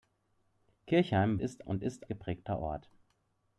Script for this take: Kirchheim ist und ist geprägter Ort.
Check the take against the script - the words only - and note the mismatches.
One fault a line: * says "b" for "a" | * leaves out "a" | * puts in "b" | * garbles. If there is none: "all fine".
all fine